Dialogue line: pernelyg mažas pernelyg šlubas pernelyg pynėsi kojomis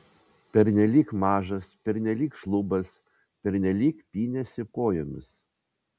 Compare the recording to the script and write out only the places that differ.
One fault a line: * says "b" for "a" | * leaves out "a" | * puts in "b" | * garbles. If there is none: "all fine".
all fine